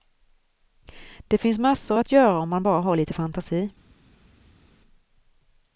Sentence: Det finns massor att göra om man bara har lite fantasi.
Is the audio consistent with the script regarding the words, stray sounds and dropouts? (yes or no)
yes